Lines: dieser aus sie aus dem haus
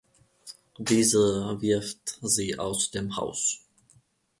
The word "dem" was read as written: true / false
true